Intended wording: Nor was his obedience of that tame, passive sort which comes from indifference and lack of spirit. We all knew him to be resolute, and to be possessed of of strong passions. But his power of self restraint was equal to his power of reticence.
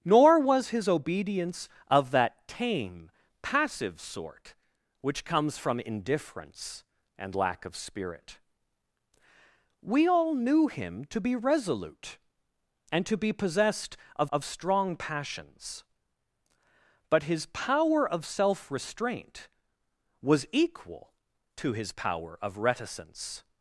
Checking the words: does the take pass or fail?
pass